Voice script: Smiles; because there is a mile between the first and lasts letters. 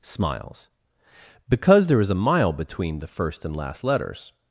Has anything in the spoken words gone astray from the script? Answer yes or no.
yes